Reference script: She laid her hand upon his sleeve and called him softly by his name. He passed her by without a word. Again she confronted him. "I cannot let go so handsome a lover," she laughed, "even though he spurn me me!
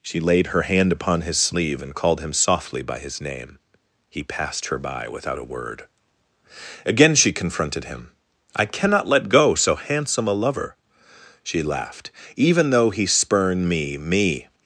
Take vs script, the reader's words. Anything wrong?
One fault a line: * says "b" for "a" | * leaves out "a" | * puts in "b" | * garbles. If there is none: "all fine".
all fine